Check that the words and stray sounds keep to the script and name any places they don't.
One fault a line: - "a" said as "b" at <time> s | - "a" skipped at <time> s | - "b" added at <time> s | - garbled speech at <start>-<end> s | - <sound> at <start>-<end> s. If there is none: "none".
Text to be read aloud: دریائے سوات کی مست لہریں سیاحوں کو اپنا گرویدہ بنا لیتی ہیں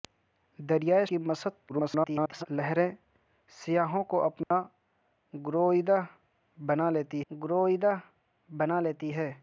- "سوات" skipped at 1.1 s
- garbled speech at 1.7-2.5 s
- dropout at 4.4-4.5 s
- "گرویدہ بنا لیتی" added at 7.3 s